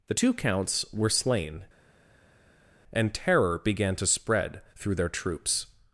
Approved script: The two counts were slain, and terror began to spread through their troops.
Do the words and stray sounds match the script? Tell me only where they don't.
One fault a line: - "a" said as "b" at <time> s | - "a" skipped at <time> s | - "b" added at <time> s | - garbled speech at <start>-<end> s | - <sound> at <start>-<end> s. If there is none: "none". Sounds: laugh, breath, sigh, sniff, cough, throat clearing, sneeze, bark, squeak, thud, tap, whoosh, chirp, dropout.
none